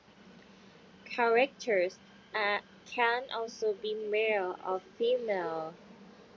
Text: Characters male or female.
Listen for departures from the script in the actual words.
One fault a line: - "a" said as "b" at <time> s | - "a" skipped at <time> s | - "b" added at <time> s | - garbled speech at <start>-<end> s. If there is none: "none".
- "can also be" added at 2.9 s